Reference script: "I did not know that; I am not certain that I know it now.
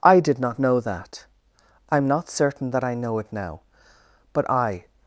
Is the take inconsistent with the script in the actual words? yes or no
yes